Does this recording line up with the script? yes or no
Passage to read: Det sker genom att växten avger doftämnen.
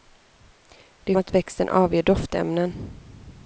no